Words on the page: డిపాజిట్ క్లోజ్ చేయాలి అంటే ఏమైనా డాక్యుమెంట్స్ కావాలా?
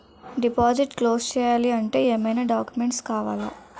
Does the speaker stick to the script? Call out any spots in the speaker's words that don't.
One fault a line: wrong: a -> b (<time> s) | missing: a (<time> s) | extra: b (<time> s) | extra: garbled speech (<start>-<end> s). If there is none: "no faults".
no faults